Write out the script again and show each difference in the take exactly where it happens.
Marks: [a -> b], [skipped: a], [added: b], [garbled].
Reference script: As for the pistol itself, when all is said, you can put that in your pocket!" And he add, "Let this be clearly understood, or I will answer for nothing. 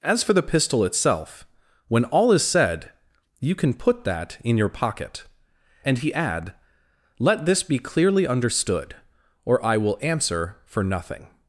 As for the pistol itself, when all is said, you can put that in your pocket!" And he add, "Let this be clearly understood, or I will answer for nothing.